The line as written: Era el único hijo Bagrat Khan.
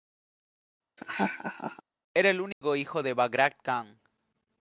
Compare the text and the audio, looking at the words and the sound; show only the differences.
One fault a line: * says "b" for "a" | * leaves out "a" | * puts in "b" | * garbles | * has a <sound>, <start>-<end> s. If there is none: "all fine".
* has a laugh, 1.0-1.8 s
* has a dropout, 2.5-2.6 s
* puts in "de"